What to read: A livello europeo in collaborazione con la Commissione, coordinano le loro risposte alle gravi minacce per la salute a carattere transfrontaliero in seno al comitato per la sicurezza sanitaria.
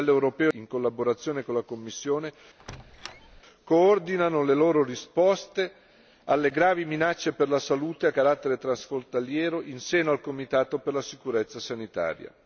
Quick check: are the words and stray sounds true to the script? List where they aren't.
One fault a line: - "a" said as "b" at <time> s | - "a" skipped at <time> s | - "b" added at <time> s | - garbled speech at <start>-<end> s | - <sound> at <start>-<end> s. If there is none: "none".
- squeak at 2.6-3.4 s